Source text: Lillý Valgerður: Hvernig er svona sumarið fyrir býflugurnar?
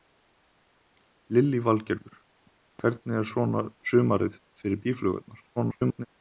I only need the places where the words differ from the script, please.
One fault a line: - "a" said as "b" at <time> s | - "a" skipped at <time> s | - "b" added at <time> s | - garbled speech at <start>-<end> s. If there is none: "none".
- garbled speech at 5.6-6.1 s